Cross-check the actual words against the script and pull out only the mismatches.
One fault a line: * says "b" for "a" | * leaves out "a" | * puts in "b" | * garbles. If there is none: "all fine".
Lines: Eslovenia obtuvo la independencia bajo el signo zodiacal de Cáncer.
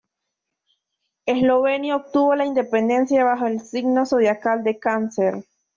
all fine